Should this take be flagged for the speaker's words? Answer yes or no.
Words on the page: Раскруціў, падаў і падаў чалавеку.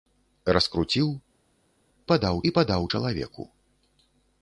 no